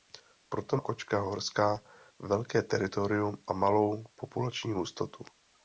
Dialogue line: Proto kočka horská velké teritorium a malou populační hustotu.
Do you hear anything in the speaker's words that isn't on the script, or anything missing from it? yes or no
no